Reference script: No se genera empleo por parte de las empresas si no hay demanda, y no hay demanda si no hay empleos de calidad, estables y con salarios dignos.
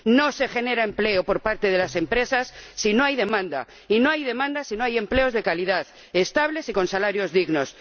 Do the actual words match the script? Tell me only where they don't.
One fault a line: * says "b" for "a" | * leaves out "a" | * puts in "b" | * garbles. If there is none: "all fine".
all fine